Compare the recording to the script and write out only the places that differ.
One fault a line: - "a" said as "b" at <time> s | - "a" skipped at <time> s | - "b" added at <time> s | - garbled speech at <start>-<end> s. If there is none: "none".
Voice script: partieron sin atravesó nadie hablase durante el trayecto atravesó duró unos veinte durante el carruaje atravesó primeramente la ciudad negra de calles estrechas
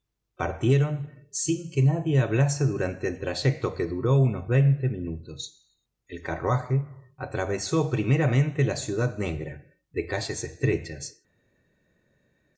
- "atravesó" said as "que" at 1.7 s
- "atravesó" said as "que" at 3.8 s
- "durante" said as "minutos" at 4.9 s